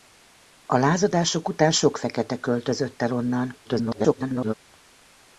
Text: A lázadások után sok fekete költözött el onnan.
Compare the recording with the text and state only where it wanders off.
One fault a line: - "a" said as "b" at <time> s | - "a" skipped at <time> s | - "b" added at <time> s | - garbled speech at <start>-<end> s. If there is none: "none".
- garbled speech at 3.6-4.5 s